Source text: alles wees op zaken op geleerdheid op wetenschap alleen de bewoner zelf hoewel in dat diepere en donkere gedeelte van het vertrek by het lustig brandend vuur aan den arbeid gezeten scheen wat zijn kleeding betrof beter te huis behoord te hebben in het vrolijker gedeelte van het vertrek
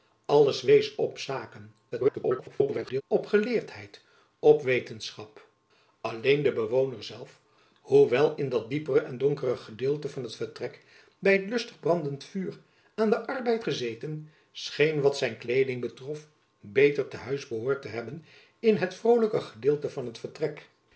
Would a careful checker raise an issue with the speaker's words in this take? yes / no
yes